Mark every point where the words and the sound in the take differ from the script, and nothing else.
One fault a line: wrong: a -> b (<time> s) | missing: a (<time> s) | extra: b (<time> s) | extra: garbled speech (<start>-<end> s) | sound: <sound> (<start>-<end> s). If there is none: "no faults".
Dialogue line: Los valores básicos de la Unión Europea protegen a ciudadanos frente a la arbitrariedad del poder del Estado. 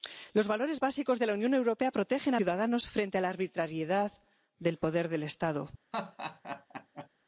sound: laugh (5.9-7.1 s)